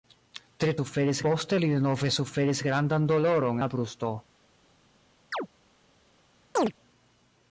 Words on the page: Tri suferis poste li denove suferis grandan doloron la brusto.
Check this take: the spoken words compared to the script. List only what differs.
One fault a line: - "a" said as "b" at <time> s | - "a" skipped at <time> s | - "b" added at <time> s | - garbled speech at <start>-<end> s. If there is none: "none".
none